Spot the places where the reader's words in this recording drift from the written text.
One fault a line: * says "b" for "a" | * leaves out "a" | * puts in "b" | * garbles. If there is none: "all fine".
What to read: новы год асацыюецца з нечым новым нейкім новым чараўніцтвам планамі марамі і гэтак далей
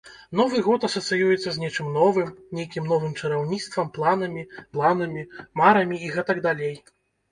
* puts in "планамі"